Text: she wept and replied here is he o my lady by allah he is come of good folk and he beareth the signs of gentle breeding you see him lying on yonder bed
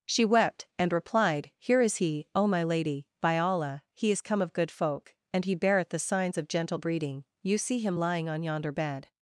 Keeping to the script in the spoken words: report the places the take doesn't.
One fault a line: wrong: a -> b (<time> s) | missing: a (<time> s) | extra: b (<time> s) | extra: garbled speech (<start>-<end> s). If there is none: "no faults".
no faults